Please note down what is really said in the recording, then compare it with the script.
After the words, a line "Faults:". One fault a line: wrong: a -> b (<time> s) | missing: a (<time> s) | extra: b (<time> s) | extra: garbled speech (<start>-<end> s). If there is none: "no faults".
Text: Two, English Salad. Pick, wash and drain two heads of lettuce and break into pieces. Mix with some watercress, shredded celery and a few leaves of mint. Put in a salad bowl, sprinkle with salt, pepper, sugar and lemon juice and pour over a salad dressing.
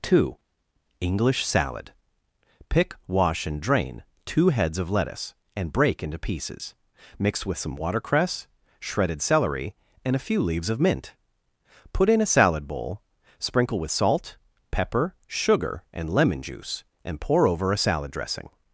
Two, English Salad. Pick, wash and drain two heads of lettuce and break into pieces. Mix with some watercress, shredded celery and a few leaves of mint. Put in a salad bowl, sprinkle with salt, pepper, sugar and lemon juice and pour over a salad dressing.
Faults:
no faults